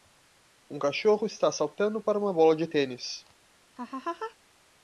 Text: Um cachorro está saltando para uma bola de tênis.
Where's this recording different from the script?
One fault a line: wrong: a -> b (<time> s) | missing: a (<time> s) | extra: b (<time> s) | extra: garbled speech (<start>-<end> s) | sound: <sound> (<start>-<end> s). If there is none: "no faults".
sound: laugh (3.8-4.4 s)